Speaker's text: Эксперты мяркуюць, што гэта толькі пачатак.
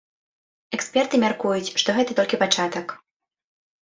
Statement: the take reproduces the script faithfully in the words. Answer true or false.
true